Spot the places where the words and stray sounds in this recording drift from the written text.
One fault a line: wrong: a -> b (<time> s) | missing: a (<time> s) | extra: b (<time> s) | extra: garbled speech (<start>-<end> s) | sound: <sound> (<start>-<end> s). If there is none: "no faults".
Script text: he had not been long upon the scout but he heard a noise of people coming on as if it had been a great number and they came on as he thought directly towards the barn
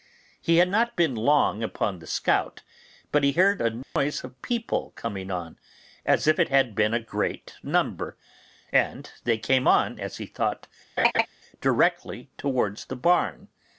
sound: dropout (3.8-4.0 s)
sound: laugh (11.0-11.3 s)